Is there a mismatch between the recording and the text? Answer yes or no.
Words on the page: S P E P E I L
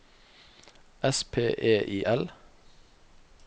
yes